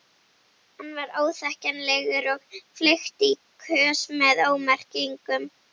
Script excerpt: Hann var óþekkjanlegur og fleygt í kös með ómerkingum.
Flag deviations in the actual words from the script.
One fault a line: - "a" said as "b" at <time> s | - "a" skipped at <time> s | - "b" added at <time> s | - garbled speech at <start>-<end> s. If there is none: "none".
none